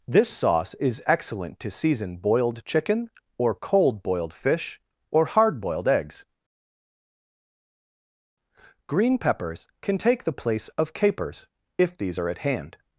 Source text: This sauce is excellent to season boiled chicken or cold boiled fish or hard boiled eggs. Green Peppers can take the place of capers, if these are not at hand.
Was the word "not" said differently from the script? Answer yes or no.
yes